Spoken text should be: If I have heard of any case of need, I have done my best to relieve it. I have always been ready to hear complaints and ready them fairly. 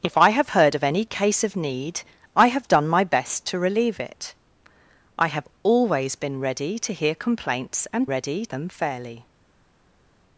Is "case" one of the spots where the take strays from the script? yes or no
no